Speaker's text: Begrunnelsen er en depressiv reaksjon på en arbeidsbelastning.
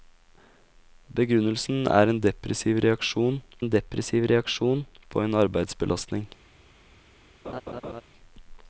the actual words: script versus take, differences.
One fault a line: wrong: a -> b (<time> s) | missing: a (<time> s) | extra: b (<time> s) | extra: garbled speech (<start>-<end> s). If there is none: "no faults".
extra: en depressiv reaksjon (3.6 s)